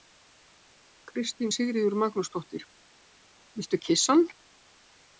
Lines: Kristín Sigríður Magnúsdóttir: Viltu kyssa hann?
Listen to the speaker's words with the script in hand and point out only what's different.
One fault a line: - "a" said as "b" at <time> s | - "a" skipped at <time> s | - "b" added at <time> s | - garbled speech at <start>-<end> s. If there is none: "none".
none